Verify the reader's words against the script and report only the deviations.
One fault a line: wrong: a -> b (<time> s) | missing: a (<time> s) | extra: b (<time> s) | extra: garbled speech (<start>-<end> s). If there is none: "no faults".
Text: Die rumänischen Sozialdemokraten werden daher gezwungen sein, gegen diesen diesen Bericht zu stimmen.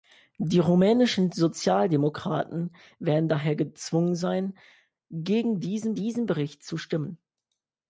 no faults